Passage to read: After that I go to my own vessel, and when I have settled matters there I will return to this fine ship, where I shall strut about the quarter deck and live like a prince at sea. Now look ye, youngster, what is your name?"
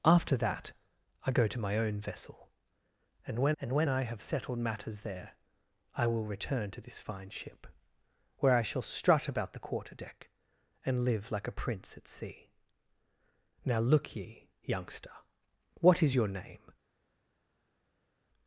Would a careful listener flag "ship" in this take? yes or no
no